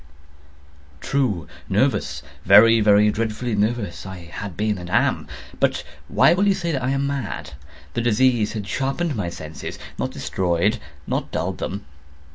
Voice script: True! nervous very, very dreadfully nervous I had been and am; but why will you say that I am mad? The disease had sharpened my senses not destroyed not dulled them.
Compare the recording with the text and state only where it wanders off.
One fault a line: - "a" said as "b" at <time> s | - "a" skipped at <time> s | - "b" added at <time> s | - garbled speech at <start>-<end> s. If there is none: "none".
none